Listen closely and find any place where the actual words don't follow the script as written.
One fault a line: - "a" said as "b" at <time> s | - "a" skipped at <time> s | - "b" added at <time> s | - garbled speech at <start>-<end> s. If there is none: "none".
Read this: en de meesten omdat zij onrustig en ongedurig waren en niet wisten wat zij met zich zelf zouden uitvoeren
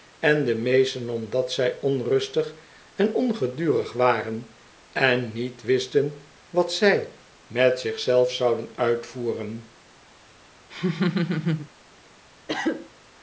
none